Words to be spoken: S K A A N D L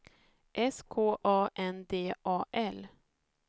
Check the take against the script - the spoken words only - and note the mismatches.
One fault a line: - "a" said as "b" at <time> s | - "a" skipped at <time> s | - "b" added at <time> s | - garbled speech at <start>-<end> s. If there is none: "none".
- "A" skipped at 1.5 s
- "A" added at 2.2 s